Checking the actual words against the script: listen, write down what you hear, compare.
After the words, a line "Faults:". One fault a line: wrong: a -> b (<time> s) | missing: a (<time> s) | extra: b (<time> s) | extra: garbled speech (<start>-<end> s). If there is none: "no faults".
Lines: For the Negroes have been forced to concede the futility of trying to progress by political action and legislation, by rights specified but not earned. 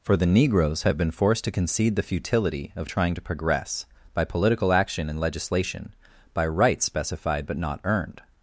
For the Negroes have been forced to concede the futility of trying to progress by political action and legislation, by rights specified but not earned.
Faults:
no faults